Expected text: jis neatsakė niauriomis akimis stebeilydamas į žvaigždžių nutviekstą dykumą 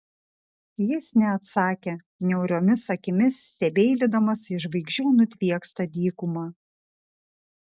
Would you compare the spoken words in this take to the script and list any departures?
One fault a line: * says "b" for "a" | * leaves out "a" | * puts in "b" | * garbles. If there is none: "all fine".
all fine